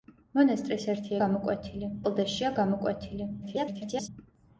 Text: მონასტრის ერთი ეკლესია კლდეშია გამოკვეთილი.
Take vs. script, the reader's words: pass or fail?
fail